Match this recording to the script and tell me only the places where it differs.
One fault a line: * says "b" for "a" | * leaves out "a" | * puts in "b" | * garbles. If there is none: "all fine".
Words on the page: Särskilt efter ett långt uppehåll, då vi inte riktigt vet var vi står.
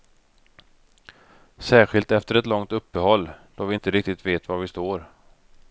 all fine